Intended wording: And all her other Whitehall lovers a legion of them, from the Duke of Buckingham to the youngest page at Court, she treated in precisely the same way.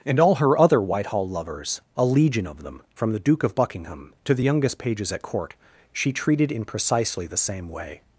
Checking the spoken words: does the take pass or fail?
fail